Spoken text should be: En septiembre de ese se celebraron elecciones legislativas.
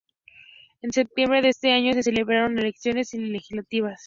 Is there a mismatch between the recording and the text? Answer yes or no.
yes